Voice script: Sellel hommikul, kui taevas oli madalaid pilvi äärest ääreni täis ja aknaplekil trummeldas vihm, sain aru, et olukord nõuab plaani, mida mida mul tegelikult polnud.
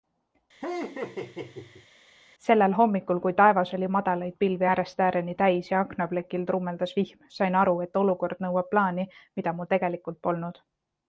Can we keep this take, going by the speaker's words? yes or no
no